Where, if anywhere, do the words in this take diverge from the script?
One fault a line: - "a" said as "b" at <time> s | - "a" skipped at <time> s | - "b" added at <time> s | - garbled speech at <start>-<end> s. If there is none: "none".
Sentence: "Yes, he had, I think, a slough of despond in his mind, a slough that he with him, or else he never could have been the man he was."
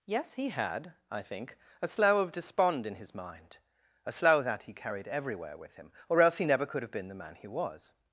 - "carried everywhere" added at 4.7 s